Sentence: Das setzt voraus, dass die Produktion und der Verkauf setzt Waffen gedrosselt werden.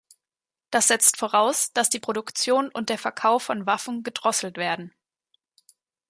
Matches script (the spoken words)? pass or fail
fail